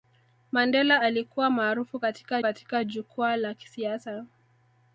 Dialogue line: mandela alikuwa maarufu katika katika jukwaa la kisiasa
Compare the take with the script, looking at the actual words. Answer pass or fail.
pass